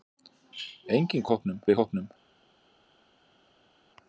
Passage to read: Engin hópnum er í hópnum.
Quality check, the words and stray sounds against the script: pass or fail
pass